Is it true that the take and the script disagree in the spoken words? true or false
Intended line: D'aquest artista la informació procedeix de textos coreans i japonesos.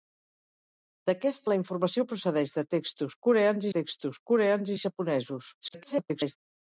true